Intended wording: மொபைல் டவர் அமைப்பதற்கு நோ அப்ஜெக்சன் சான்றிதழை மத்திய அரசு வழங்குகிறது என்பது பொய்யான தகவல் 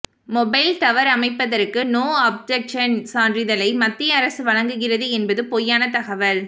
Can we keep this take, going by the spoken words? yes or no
yes